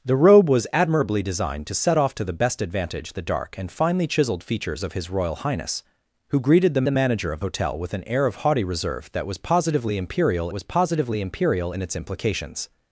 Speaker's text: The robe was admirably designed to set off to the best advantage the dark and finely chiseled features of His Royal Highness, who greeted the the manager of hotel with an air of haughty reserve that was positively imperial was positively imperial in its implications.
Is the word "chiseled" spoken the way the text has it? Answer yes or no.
yes